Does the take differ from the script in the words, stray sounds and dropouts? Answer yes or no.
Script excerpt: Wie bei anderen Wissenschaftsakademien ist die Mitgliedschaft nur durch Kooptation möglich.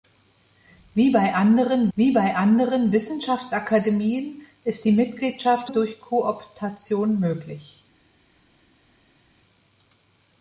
yes